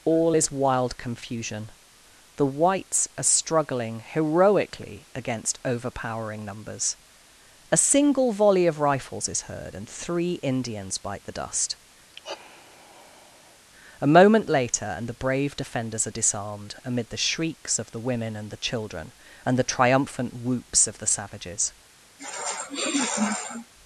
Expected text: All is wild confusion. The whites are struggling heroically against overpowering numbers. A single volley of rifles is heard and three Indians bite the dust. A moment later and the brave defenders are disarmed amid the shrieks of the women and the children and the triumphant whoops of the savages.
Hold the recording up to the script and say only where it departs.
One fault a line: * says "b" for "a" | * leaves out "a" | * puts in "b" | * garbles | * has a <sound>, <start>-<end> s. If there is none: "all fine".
* has a sigh, 12.1-13.6 s
* has a sniff, 22.2-23.7 s